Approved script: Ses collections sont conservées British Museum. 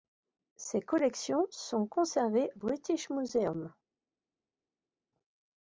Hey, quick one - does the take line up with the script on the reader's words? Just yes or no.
yes